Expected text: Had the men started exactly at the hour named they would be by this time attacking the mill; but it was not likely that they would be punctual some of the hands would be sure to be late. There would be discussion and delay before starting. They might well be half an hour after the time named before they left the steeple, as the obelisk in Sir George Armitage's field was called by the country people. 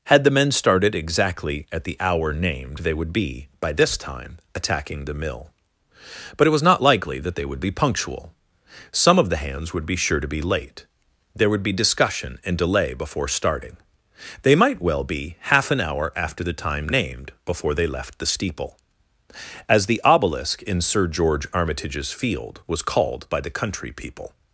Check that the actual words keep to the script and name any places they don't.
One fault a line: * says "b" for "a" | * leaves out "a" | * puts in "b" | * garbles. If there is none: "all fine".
all fine